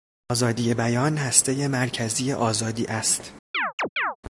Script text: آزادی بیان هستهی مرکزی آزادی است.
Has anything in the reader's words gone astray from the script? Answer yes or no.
no